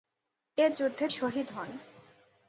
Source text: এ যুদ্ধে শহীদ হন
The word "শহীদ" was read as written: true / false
true